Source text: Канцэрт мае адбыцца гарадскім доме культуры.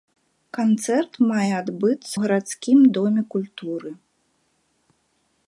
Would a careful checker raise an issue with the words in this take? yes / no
no